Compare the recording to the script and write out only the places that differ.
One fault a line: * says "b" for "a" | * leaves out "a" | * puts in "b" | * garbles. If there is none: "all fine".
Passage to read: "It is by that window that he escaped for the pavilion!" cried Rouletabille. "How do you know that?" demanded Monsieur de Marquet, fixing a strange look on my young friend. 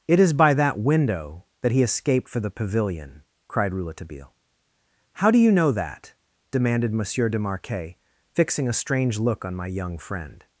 all fine